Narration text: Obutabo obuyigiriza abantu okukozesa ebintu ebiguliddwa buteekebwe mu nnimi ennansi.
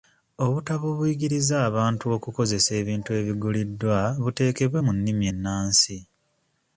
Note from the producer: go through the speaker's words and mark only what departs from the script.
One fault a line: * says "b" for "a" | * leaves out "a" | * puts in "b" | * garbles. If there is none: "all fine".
all fine